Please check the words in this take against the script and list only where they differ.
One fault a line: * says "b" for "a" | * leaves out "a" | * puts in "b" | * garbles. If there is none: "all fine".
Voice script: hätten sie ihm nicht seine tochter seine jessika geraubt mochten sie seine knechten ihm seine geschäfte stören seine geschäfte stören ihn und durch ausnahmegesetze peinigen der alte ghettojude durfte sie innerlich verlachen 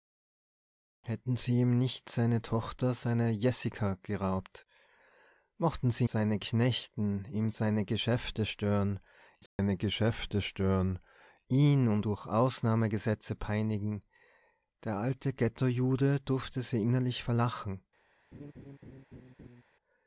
all fine